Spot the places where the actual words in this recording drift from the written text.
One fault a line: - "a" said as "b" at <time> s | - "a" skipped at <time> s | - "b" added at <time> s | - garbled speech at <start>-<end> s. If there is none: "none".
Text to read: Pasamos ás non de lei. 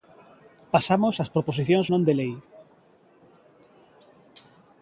- "proposicións" added at 1.4 s